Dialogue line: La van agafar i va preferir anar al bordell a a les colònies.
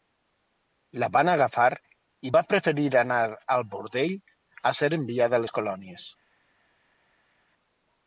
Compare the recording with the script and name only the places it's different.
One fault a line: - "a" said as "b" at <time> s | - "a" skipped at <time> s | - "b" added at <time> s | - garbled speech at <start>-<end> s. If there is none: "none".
- "ser enviada" added at 4.8 s